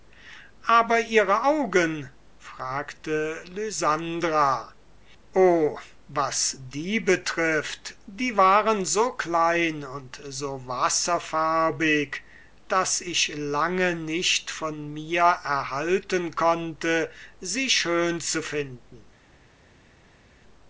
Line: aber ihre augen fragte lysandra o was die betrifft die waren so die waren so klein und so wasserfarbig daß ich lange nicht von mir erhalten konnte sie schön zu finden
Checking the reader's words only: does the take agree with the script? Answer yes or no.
no